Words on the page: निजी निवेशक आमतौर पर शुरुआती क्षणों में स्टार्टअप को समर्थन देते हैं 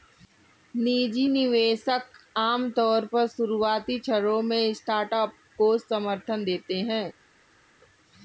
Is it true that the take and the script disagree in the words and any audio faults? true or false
false